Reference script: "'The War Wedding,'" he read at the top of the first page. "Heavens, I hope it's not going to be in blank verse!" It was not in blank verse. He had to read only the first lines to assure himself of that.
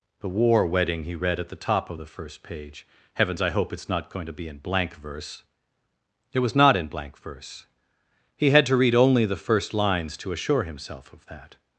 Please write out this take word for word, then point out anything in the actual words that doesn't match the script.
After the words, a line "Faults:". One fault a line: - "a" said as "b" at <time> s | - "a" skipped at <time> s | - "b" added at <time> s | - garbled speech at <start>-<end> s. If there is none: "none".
"'The War Wedding,'" he read at the top of the first page. "Heavens, I hope it's not going to be in blank verse!" It was not in blank verse. He had to read only the first lines to assure himself of that.
Faults:
none